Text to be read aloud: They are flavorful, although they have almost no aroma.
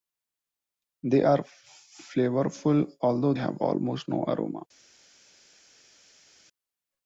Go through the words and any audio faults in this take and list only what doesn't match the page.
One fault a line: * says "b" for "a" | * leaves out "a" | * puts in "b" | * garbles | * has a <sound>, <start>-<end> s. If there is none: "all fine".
* leaves out "they"